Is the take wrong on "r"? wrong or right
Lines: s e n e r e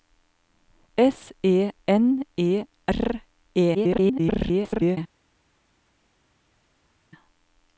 right